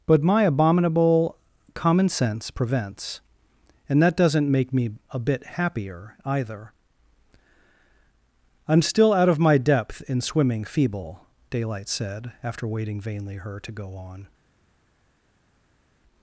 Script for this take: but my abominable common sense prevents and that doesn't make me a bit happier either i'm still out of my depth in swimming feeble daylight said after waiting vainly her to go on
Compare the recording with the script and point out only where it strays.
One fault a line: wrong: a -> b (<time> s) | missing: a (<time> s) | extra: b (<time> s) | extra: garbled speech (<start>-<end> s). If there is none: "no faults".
no faults